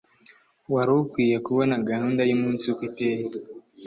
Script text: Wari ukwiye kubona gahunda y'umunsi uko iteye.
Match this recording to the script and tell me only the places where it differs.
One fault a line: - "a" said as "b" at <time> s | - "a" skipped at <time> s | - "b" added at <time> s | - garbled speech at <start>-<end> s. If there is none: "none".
none